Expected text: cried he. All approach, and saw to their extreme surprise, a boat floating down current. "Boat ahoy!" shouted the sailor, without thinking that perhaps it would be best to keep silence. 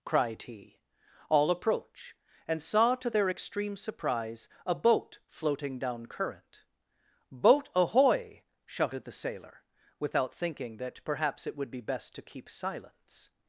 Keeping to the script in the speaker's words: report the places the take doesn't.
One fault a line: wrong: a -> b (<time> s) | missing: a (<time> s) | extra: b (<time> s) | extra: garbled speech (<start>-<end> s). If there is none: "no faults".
no faults